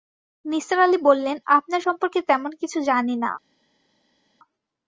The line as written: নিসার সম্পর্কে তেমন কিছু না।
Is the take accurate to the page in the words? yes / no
no